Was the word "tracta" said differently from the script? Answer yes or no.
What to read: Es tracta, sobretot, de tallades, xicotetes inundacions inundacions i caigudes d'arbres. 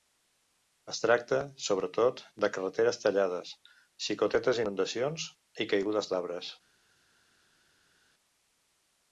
no